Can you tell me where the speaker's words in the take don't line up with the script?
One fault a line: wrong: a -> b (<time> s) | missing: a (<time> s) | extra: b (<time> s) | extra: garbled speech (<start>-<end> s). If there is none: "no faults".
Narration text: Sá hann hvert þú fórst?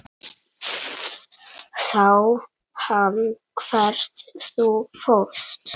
no faults